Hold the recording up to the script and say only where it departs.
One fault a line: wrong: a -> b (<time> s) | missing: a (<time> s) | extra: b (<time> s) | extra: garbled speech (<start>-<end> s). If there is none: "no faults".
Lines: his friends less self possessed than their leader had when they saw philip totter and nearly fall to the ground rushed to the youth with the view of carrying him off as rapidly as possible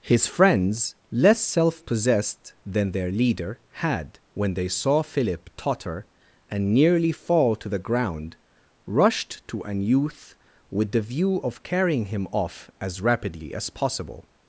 wrong: the -> an (9.6 s)